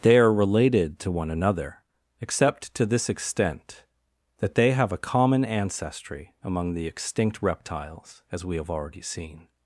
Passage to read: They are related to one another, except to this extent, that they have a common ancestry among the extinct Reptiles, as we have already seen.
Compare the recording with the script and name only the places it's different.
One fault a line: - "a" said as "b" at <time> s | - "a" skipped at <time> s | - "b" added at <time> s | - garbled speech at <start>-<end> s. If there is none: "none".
none